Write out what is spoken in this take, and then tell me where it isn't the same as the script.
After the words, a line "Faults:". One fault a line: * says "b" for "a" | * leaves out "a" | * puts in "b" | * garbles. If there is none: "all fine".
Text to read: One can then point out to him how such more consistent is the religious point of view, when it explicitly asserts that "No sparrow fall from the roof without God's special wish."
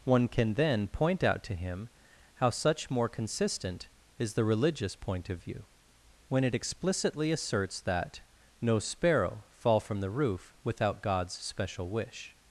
One can then point out to him how such more consistent is the religious point of view, when it explicitly asserts that "No sparrow fall from the roof without God's special wish."
Faults:
all fine